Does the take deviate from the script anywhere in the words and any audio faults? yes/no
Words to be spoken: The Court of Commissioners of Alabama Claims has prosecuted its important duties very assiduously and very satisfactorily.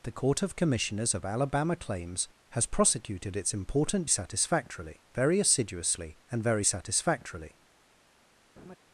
yes